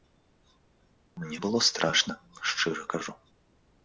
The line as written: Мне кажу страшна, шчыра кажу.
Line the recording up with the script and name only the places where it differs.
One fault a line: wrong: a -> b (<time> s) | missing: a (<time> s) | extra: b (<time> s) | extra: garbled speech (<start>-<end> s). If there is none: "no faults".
wrong: кажу -> было (1.4 s)